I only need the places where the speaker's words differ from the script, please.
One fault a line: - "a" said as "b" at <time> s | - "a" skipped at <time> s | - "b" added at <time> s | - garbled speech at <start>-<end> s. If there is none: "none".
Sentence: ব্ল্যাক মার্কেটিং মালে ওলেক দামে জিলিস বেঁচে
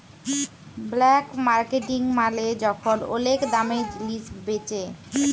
- "যখল" added at 2.6 s